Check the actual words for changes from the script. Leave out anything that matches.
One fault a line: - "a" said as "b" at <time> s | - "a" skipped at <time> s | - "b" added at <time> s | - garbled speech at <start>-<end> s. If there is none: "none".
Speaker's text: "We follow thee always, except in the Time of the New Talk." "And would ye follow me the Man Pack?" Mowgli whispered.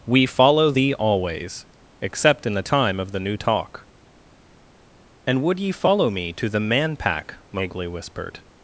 - "to" added at 6.3 s